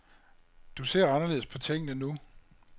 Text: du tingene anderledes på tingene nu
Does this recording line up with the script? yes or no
no